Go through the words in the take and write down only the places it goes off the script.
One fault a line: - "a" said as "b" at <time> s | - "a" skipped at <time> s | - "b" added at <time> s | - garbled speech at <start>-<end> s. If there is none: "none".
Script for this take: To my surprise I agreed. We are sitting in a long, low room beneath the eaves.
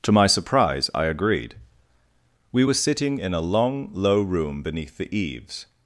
- "are" said as "were" at 2.6 s